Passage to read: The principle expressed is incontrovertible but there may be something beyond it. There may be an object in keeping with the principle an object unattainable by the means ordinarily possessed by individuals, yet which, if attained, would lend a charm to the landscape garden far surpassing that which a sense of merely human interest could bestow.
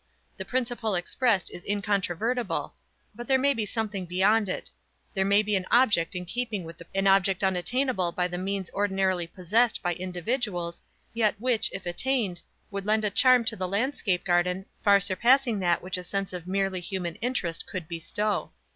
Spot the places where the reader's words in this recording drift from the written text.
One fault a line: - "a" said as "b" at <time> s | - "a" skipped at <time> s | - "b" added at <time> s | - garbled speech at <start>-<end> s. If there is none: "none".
- "principle" skipped at 6.9 s